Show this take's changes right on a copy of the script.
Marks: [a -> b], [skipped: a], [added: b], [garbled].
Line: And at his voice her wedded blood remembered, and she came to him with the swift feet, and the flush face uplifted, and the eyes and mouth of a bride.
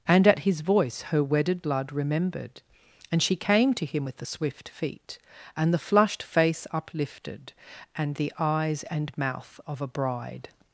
And at his voice her wedded blood remembered, and she came to him with the swift feet, and the [flush -> flushed] face uplifted, and the eyes and mouth of a bride.